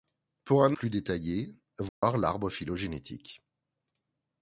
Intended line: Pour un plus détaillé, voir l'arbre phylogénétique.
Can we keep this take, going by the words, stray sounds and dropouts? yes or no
no